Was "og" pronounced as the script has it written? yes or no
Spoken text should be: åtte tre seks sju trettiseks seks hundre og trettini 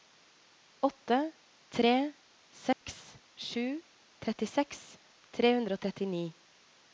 yes